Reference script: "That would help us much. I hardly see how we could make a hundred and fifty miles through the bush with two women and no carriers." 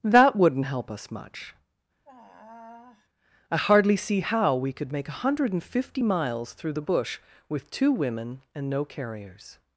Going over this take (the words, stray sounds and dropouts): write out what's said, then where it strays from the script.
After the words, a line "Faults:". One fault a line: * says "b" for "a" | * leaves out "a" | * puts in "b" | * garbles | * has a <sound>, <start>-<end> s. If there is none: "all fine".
"That wouldn't help us much. I hardly see how we could make a hundred and fifty miles through the bush with two women and no carriers."
Faults:
* says "wouldn't" for "would"
* has a sigh, 2.0-3.1 s